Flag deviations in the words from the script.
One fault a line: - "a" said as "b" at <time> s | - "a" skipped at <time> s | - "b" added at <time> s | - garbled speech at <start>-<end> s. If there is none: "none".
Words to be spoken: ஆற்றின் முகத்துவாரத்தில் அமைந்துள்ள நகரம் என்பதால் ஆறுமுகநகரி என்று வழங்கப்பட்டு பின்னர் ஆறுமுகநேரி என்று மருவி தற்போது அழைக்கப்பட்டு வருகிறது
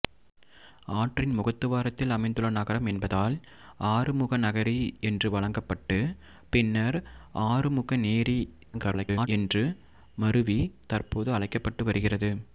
- garbled speech at 8.7-9.3 s